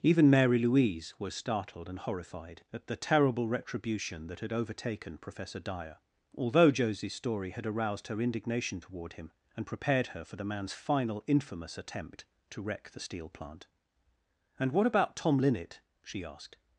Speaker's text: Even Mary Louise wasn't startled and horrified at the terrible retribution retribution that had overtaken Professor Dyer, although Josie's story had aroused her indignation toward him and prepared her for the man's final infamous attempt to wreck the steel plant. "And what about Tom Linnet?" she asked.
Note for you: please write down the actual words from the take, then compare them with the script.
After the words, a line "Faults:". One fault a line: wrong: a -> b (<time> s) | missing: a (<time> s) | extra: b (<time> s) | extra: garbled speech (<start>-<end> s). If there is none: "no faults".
Even Mary Louise was startled and horrified at the terrible retribution that had overtaken Professor Dyer, although Josie's story had aroused her indignation toward him and prepared her for the man's final infamous attempt to wreck the steel plant. "And what about Tom Linnet?" she asked.
Faults:
wrong: wasn't -> was (1.2 s)
missing: retribution (4.3 s)